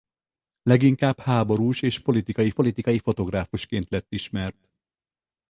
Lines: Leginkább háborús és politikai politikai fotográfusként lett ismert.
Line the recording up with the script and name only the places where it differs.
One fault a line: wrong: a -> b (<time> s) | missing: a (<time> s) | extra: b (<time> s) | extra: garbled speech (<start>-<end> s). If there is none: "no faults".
no faults